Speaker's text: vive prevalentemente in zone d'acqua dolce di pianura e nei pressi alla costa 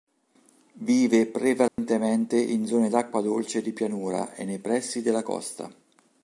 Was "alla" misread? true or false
true